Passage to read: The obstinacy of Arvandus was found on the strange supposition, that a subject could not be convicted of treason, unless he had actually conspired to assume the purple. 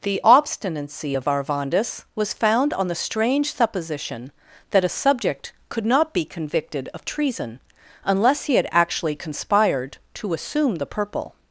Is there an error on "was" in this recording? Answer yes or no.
no